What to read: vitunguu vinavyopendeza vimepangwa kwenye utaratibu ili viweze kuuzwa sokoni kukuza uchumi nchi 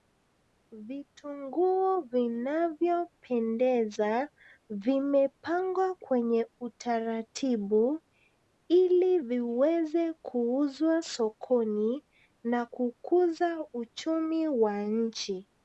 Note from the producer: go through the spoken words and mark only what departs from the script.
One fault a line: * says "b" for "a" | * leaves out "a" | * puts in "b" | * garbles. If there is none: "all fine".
* puts in "na"
* puts in "wa"